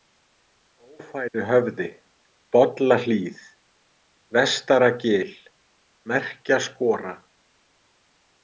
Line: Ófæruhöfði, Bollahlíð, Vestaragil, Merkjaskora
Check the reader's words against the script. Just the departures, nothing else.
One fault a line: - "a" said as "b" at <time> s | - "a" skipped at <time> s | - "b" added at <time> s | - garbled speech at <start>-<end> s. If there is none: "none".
none